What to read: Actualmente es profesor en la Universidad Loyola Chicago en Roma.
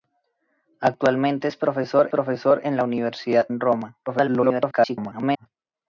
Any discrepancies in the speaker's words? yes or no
yes